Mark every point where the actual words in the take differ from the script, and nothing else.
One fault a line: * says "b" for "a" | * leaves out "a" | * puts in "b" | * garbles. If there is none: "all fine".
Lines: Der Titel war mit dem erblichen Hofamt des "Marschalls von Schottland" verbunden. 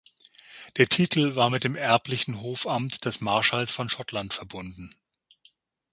all fine